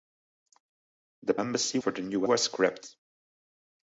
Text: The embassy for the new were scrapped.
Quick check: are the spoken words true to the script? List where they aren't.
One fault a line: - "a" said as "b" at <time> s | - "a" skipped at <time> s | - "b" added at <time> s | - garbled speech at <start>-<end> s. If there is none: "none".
none